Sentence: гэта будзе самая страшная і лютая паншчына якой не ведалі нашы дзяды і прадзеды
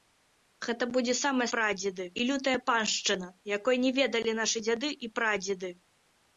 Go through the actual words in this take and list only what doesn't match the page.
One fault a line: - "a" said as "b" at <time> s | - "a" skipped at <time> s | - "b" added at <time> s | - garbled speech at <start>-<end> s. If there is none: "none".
- "страшная" said as "прадзеды" at 1.6 s